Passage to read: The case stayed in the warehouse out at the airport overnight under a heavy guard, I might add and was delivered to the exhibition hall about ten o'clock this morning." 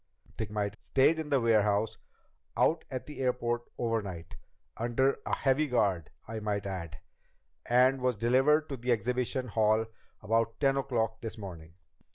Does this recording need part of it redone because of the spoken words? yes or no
yes